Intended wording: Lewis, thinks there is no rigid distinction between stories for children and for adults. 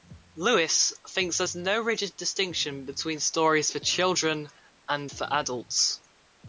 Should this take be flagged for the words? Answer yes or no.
no